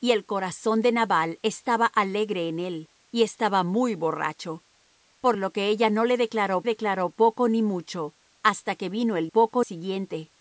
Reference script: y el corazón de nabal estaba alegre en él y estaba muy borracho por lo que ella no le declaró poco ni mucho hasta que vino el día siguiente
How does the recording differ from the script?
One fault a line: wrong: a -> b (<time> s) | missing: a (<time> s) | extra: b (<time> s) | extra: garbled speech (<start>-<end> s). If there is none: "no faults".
extra: declaró (6.6 s)
wrong: día -> poco (9.3 s)